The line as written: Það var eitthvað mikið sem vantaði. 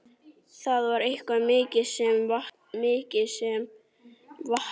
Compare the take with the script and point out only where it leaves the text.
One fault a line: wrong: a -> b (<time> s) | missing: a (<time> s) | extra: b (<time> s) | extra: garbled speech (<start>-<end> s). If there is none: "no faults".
no faults